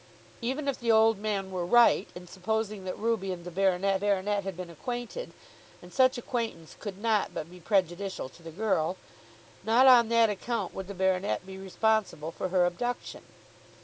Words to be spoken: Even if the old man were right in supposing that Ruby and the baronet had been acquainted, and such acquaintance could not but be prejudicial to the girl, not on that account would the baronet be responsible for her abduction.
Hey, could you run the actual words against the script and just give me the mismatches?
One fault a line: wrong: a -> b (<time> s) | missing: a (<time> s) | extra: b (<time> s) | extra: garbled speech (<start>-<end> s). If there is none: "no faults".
extra: baronet (4.0 s)